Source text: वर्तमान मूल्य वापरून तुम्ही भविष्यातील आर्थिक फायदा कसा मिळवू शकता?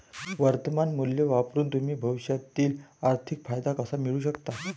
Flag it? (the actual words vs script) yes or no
no